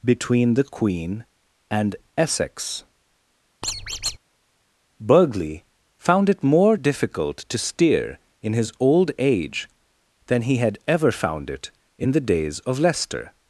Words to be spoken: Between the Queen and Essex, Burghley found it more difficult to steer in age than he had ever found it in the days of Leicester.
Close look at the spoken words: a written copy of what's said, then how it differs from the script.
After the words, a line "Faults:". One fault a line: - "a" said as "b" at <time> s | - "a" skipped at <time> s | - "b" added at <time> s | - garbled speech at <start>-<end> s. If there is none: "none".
Between the Queen and Essex, Burghley found it more difficult to steer in his old age than he had ever found it in the days of Leicester.
Faults:
- "his old" added at 8.5 s